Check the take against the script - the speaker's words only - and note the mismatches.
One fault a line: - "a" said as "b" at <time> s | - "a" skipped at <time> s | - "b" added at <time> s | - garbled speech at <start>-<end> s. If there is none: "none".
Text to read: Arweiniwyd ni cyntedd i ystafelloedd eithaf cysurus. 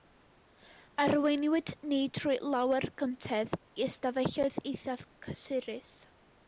- "trwy lawer" added at 2.2 s